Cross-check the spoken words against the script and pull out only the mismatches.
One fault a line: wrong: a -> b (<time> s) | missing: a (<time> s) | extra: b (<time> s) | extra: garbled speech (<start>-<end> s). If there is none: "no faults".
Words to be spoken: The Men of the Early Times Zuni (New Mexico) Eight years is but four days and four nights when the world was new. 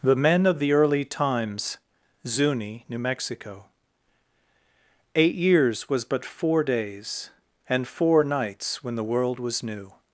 wrong: is -> was (5.9 s)